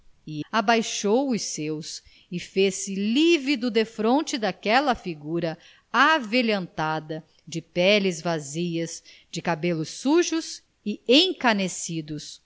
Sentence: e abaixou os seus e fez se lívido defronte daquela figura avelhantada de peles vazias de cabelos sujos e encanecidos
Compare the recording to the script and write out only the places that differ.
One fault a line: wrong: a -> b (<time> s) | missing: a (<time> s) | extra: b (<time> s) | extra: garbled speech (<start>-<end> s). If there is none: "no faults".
no faults